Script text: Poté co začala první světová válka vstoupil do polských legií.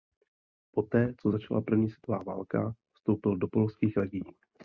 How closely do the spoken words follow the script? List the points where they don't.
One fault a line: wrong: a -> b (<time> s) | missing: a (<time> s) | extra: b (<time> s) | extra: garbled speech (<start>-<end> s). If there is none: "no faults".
no faults